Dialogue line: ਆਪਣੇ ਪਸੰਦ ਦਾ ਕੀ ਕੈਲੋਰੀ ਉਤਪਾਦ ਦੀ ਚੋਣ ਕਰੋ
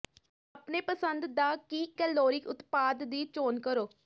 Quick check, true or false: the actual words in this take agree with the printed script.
true